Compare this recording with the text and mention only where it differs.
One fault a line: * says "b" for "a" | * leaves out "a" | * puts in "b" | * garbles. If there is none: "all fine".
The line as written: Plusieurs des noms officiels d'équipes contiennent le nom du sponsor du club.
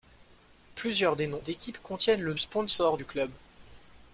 * leaves out "officiels"
* leaves out "nom du"